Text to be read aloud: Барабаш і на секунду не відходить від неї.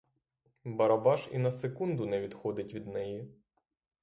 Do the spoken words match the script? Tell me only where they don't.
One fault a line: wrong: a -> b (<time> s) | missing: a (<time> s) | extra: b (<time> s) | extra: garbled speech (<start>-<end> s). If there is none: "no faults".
no faults